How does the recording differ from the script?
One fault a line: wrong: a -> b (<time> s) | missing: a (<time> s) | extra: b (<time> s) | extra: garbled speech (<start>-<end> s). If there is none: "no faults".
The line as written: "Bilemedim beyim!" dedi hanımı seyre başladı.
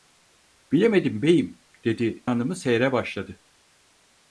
no faults